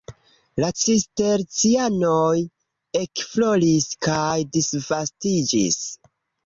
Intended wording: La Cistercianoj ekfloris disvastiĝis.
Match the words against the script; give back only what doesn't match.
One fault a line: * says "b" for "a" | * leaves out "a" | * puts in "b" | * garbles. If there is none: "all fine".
* puts in "kaj"